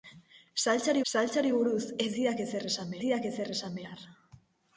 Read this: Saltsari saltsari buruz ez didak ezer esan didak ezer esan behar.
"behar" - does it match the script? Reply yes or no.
yes